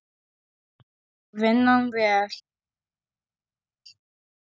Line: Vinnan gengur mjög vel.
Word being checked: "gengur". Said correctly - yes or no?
no